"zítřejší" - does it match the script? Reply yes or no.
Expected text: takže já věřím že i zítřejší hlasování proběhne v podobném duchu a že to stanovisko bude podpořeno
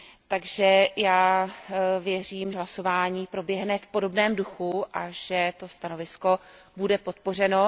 no